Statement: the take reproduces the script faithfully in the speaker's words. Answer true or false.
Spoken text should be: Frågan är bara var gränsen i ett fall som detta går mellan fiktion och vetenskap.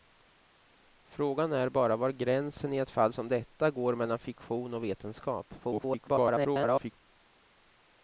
false